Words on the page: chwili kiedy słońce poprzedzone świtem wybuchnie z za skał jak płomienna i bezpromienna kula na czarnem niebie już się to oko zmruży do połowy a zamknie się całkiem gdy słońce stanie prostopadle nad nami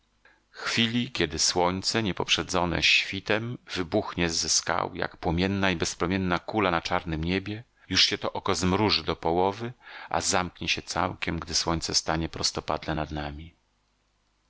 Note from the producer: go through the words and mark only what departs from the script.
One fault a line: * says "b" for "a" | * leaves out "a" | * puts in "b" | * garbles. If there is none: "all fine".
* puts in "nie"